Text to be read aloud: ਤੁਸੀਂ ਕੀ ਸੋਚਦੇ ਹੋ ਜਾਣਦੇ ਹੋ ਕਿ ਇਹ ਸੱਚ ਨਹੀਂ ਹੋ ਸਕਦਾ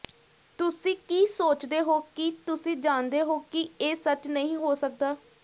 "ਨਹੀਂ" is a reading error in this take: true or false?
false